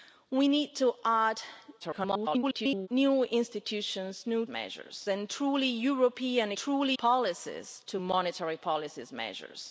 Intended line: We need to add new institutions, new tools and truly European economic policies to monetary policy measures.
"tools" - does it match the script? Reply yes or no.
no